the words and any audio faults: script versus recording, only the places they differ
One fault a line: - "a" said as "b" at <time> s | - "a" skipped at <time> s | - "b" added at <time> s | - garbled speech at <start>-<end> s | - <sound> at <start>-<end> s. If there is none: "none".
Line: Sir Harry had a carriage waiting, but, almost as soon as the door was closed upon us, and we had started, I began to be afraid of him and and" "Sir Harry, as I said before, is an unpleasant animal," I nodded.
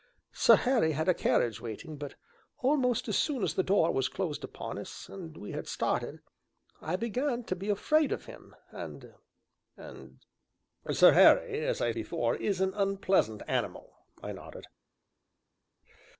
- "said" skipped at 11.9 s